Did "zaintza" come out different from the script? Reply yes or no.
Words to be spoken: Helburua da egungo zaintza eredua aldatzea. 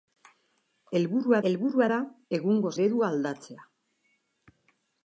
yes